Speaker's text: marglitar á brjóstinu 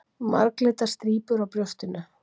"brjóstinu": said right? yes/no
yes